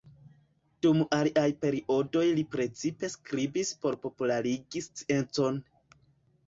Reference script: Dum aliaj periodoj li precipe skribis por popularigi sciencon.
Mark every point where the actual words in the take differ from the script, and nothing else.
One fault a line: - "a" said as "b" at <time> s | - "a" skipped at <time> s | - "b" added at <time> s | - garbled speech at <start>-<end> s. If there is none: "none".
none